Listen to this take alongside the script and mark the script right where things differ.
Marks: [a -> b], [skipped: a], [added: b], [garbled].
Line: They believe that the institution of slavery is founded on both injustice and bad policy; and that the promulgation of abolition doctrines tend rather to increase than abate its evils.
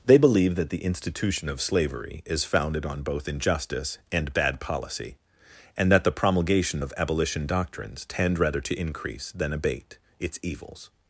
They believe that the institution of slavery is founded on both injustice and bad policy; and that the promulgation of abolition doctrines tend rather to increase than abate its evils.